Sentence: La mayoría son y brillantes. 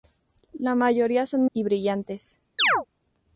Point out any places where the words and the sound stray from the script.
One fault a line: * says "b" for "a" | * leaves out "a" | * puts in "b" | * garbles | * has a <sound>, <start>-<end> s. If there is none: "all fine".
* has a chirp, 2.6-2.9 s